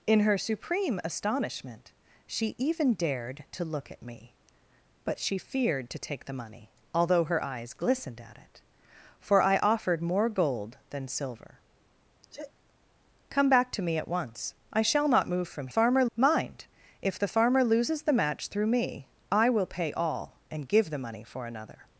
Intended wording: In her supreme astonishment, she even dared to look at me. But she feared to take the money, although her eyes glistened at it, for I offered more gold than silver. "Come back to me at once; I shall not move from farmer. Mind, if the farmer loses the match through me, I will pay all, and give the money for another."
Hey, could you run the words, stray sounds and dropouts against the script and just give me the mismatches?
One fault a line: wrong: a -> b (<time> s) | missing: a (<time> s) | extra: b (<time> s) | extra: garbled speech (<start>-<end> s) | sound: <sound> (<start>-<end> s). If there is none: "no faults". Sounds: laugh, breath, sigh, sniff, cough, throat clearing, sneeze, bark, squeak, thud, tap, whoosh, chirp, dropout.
sound: sneeze (12.3-12.5 s)